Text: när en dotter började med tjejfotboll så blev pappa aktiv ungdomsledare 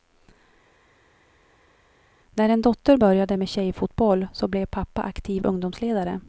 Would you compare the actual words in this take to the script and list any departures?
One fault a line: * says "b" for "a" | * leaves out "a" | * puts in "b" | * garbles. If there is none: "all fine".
all fine